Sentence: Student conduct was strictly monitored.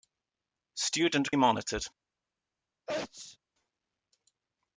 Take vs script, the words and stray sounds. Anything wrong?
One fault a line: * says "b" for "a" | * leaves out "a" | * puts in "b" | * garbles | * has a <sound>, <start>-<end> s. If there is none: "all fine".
* leaves out "conduct was strictly"
* has a sneeze, 2.9-3.4 s